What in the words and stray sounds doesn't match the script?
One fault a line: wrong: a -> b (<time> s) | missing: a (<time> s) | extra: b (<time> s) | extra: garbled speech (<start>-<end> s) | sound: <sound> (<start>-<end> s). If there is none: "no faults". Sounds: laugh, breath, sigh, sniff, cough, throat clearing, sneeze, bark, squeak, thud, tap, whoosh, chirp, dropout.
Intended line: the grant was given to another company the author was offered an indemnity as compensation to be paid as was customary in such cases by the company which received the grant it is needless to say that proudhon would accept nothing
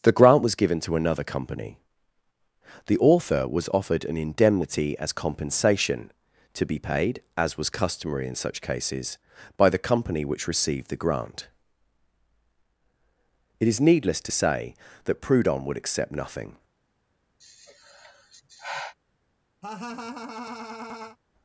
sound: sigh (17.4-18.9 s)
sound: laugh (19.6-21.2 s)